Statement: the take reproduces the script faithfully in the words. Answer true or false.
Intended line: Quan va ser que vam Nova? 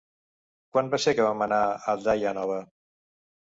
false